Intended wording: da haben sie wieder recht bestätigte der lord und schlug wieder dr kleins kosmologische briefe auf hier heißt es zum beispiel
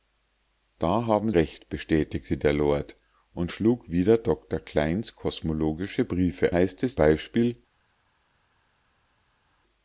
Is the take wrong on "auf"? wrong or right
wrong